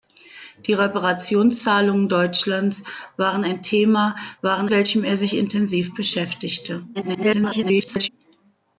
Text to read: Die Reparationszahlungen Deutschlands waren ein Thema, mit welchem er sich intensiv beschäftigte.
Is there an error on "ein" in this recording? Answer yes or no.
no